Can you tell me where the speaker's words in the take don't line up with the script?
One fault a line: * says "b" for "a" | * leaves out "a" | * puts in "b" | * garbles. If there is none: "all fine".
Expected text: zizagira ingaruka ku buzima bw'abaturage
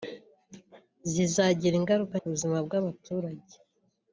all fine